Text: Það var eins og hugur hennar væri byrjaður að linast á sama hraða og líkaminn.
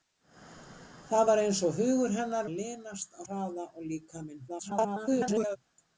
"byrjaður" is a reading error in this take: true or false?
true